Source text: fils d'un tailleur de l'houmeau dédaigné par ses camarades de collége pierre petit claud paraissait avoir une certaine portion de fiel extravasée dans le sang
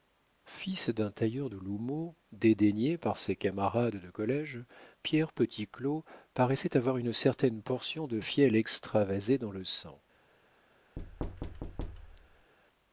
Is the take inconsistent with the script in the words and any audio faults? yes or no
yes